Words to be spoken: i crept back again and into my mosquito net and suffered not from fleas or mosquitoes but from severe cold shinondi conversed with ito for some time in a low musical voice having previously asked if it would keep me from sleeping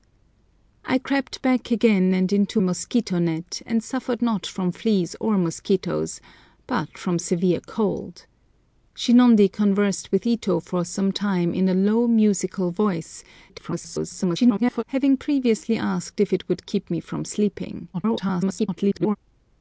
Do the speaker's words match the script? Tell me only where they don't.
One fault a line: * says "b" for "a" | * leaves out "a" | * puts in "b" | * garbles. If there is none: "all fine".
* leaves out "my"
* garbles
* garbles